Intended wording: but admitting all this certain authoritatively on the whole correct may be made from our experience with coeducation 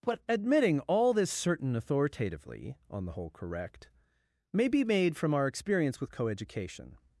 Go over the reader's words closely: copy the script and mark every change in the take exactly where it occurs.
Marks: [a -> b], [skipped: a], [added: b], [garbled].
but admitting all this certain authoritatively on the whole correct may be made from our experience with coeducation